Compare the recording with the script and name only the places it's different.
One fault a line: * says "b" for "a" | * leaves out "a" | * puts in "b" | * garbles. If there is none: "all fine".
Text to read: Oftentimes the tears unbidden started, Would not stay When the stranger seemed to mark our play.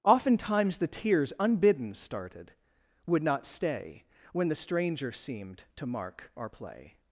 all fine